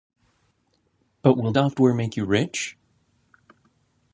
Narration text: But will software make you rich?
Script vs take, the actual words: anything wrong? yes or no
no